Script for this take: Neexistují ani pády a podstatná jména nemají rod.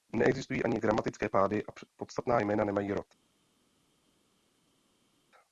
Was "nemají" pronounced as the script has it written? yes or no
yes